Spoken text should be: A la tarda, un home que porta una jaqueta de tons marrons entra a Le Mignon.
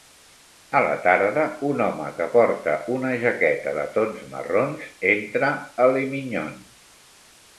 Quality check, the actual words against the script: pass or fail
pass